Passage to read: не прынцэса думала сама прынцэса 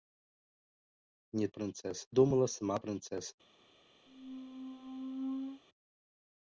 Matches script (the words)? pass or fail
pass